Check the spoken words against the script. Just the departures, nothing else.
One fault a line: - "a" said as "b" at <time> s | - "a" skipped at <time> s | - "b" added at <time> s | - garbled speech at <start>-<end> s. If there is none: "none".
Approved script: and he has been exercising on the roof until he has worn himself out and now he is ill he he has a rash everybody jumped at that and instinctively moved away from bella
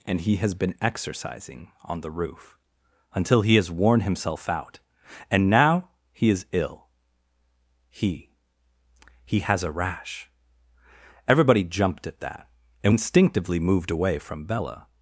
none